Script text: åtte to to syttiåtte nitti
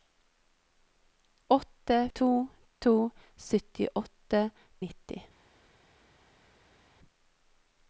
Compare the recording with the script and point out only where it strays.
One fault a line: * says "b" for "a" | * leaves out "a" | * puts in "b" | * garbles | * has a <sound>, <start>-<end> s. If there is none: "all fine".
all fine